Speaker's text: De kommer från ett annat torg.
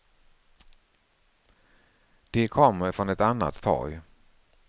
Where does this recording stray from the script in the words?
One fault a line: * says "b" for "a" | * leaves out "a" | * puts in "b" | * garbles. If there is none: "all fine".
all fine